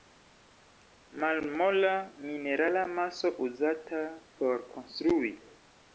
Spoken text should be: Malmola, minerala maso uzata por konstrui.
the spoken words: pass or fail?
pass